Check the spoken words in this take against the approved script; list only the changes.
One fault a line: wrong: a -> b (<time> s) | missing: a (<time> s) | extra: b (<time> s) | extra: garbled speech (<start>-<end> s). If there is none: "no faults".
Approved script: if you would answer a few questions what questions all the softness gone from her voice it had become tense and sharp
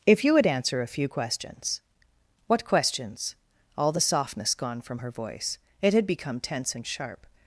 no faults